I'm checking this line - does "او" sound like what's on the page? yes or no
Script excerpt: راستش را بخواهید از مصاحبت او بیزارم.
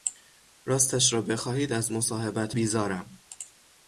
no